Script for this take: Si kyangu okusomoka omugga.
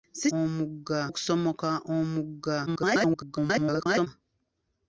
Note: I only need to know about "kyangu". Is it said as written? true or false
false